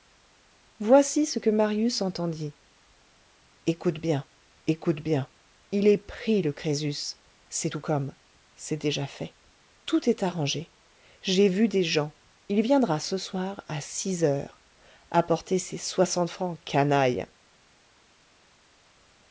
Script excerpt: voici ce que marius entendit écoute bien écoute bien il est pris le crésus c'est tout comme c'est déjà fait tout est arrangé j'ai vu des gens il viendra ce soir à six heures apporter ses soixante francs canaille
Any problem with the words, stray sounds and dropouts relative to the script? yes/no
no